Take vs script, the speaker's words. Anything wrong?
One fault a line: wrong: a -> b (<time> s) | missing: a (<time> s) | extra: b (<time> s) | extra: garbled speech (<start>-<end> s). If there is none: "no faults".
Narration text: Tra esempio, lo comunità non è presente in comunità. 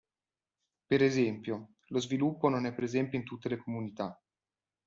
wrong: Tra -> Per (0.9 s)
wrong: comunità -> sviluppo (2.0 s)
extra: tutte le (3.2 s)